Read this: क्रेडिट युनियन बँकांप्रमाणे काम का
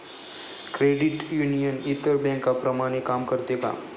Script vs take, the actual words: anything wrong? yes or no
yes